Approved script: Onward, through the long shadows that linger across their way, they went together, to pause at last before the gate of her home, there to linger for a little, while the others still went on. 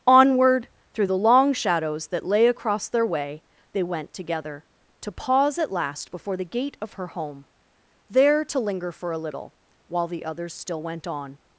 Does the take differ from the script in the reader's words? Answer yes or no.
yes